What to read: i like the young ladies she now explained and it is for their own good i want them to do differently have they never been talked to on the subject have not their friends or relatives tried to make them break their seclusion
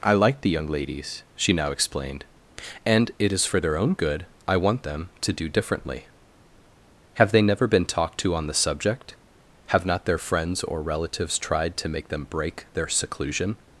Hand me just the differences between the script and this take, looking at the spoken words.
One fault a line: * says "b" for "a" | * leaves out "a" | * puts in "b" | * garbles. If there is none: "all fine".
all fine